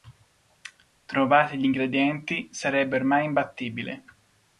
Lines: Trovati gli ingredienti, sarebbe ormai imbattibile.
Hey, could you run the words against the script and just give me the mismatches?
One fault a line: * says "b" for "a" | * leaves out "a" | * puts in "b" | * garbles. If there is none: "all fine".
all fine